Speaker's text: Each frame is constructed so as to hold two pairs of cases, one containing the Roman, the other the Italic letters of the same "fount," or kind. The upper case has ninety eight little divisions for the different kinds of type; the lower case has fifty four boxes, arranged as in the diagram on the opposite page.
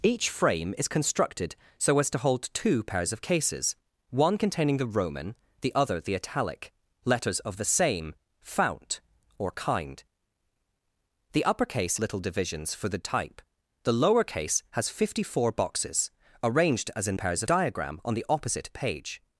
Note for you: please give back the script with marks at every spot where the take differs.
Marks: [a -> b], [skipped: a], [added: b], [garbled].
Each frame is constructed so as to hold two pairs of cases, one containing the Roman, the other the Italic letters of the same "fount," or kind. The upper case [skipped: has ninety eight] little divisions for the [skipped: different kinds of] type; the lower case has fifty four boxes, arranged as in [the -> pairs] diagram on the opposite page.